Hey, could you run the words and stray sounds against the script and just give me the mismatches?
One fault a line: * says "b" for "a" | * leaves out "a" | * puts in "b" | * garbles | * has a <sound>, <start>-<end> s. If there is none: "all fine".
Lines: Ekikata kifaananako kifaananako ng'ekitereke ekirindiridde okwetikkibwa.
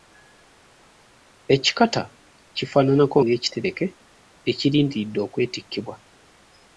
* leaves out "kifaananako"